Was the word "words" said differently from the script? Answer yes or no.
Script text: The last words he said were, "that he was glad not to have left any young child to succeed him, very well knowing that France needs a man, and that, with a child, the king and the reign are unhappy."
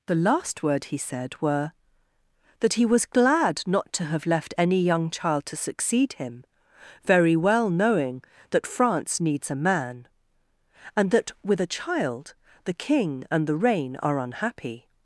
yes